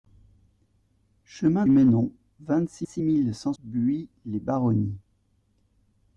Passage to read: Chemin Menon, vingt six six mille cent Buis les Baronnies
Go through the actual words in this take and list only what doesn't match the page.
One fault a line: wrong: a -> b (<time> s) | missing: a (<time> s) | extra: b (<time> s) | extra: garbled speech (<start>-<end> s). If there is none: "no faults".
no faults